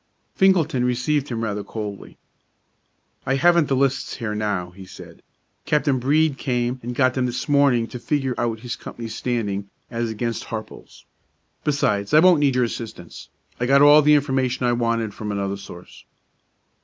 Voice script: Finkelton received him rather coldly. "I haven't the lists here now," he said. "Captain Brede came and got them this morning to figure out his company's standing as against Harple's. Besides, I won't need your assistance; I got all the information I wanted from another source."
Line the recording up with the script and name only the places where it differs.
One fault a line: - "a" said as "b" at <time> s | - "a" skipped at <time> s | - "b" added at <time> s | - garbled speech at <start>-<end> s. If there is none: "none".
none